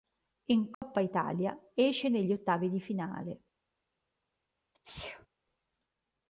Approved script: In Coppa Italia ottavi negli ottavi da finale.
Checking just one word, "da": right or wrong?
wrong